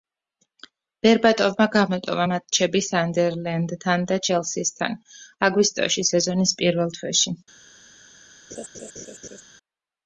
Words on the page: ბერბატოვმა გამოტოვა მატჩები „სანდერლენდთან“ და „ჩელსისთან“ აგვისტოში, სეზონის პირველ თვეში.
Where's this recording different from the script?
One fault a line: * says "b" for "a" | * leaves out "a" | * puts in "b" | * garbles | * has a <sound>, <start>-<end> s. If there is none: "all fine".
* has a laugh, 8.5-9.4 s